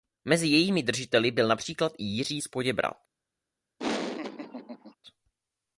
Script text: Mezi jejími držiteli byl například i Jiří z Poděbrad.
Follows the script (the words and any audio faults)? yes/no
no